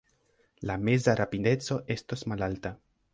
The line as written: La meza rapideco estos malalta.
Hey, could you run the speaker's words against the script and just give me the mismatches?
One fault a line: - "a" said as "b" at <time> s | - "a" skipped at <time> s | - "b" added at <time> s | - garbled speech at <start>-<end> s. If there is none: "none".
none